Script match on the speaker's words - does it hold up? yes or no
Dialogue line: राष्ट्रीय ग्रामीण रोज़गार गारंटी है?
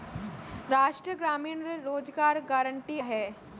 yes